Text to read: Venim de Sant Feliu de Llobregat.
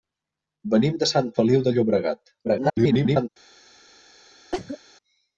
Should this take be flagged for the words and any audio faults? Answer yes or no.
yes